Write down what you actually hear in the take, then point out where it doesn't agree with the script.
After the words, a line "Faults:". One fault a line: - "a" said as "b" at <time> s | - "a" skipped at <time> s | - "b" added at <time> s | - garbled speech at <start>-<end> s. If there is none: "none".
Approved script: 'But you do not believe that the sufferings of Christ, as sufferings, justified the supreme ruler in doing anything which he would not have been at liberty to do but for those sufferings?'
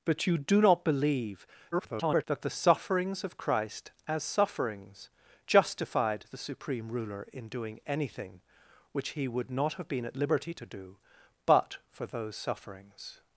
'But you do not believe [garbled] that the sufferings of Christ, as sufferings, justified the supreme ruler in doing anything which he would not have been at liberty to do but for those sufferings?'
Faults:
- garbled speech at 1.7-2.3 s